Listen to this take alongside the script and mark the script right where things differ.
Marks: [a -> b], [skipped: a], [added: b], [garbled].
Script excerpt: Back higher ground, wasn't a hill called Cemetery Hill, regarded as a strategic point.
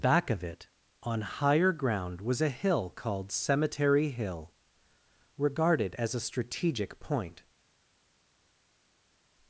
Back [added: of it on] higher ground, [wasn't -> was] a hill called Cemetery Hill, regarded as a strategic point.